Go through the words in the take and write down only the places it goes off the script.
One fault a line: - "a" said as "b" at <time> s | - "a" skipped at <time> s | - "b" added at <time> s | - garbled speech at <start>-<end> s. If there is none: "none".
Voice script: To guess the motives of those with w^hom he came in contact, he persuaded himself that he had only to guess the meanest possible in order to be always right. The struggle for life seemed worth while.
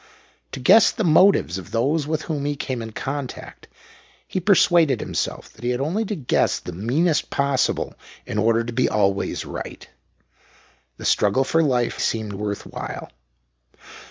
none